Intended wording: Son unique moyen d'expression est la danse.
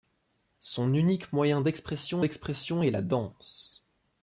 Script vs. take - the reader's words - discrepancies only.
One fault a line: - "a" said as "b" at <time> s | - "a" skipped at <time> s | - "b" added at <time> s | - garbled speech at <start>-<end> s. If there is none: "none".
- "d'expression" added at 2.2 s